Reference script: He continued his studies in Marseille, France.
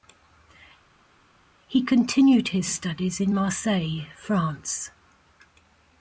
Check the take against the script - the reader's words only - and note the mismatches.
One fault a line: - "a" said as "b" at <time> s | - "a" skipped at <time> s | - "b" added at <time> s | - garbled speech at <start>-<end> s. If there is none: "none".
none